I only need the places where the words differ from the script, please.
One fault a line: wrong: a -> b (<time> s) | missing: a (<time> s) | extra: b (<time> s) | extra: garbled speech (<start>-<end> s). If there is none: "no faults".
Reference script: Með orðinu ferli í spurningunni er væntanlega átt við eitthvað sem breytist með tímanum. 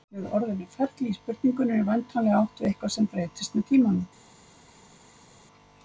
no faults